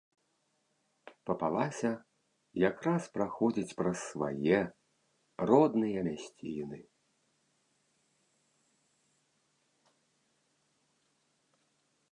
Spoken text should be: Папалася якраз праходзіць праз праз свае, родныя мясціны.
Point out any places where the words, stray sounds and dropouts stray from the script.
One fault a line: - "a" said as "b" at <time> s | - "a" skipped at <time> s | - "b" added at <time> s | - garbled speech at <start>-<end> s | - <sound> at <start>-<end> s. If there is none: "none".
- "праз" skipped at 4.0 s